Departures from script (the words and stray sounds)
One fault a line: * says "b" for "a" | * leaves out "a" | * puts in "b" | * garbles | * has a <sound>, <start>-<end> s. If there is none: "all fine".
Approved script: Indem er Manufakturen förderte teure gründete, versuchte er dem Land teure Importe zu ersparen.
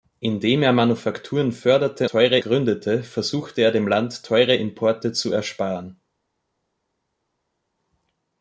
all fine